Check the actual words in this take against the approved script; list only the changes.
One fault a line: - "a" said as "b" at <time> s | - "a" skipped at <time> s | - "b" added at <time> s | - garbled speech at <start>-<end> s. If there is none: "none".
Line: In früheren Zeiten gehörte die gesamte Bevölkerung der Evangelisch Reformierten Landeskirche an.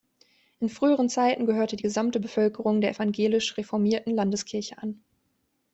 none